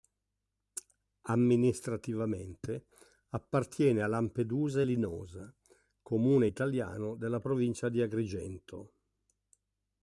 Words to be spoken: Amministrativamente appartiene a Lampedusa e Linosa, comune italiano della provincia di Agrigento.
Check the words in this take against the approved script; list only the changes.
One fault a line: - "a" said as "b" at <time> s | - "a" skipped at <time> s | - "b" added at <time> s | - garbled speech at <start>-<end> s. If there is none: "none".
none